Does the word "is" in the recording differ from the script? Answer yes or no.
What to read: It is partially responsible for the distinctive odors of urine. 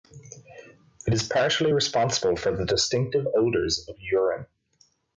no